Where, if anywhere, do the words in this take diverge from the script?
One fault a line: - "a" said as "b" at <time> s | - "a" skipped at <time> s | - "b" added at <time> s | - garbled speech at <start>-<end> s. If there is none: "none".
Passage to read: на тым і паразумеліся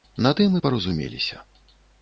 none